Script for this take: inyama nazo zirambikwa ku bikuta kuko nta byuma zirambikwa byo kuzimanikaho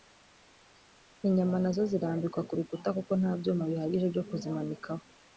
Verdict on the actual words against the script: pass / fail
fail